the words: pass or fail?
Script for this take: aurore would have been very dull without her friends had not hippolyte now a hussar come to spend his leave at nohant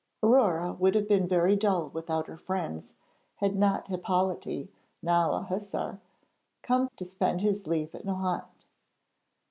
pass